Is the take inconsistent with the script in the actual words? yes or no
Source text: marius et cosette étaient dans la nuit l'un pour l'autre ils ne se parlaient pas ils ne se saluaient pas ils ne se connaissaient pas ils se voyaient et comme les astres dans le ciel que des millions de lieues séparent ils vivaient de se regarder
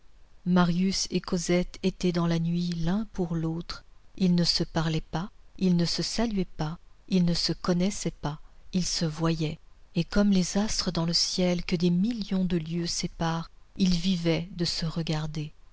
no